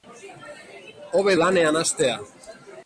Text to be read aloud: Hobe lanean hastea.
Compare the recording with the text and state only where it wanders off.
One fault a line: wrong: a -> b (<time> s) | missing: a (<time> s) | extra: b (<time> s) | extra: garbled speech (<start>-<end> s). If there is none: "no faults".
no faults